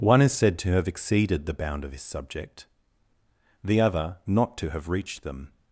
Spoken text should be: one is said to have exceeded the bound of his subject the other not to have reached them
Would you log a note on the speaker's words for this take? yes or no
no